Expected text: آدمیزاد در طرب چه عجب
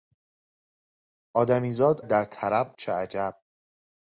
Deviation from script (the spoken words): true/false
false